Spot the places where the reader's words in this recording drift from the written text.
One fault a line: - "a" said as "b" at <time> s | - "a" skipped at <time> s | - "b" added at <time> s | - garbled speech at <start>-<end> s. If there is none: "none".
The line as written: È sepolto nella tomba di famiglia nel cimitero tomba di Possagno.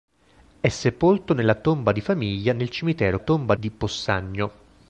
none